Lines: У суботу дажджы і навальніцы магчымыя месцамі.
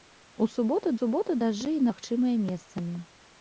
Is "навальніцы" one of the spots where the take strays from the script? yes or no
yes